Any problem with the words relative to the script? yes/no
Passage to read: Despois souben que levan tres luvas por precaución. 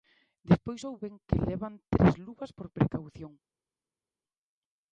no